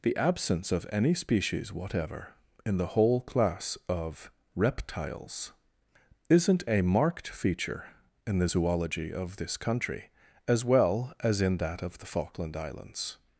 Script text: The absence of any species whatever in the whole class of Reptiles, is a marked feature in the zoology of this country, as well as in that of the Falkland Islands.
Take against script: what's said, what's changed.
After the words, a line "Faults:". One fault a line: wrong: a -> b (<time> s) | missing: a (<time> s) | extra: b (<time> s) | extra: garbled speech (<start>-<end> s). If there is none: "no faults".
The absence of any species whatever in the whole class of Reptiles, isn't a marked feature in the zoology of this country, as well as in that of the Falkland Islands.
Faults:
wrong: is -> isn't (6.3 s)